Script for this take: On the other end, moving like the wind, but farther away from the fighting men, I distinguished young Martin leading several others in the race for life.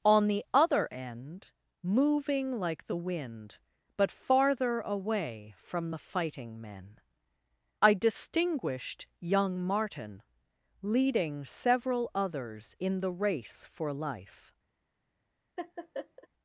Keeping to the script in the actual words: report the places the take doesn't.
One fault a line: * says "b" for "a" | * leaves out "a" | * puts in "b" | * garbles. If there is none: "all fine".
all fine